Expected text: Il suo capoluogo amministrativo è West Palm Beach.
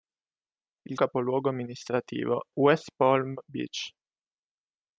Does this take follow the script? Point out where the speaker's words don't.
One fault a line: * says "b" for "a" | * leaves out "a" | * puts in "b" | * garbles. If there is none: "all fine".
* leaves out "suo"
* leaves out "è"